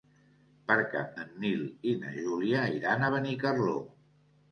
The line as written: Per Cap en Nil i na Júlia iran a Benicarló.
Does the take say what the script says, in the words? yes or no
yes